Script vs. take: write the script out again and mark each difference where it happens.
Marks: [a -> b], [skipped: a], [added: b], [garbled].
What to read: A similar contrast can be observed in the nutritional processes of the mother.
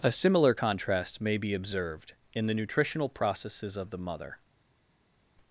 A similar contrast [can -> may] be observed in the nutritional processes of the mother.